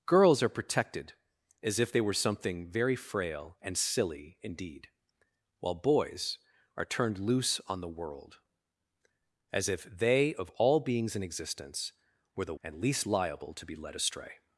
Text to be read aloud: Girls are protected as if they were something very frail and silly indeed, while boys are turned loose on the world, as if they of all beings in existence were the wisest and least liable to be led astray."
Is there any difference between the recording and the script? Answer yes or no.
yes